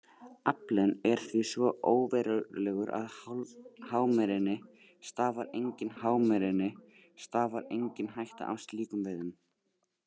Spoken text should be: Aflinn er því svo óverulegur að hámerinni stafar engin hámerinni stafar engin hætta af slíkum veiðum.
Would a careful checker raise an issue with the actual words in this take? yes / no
no